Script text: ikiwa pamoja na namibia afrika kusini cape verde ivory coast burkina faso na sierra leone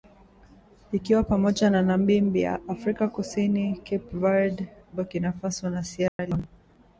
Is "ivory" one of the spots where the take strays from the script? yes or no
yes